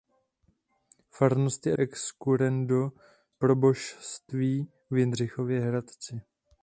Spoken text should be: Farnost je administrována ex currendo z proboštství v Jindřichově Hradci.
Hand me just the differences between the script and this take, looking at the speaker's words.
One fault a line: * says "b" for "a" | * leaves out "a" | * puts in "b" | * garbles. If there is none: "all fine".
* leaves out "administrována"
* leaves out "z"